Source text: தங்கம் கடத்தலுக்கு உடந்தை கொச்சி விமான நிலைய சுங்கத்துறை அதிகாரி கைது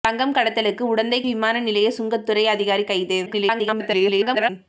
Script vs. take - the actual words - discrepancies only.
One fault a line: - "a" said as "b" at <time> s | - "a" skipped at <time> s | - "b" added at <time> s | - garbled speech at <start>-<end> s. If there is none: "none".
- "கொச்சி" skipped at 1.2 s
- garbled speech at 3.3-4.5 s